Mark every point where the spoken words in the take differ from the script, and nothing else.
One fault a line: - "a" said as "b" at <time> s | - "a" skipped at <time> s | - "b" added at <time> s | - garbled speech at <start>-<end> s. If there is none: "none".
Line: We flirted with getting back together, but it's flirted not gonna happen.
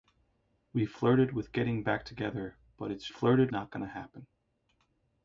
none